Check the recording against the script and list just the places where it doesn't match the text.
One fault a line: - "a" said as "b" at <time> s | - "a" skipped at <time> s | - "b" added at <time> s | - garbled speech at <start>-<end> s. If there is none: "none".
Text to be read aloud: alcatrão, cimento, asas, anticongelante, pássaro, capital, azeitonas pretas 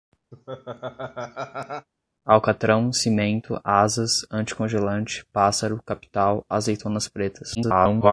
- garbled speech at 7.6-8.1 s